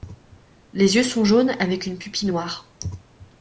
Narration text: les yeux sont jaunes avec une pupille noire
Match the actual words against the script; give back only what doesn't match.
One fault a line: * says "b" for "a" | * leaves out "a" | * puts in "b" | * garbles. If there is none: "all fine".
all fine